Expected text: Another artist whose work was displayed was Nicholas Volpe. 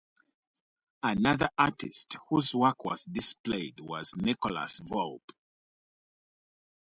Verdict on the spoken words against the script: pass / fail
pass